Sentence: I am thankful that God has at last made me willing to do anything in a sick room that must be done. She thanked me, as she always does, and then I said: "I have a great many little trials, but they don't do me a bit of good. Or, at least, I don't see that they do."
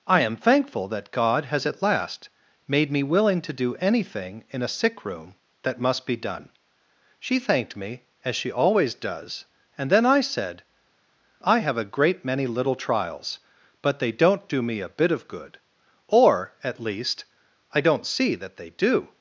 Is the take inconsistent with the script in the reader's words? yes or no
no